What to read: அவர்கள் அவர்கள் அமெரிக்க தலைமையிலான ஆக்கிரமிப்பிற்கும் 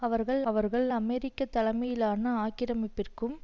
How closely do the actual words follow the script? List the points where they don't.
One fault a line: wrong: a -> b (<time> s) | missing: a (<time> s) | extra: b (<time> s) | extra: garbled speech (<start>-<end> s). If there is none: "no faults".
no faults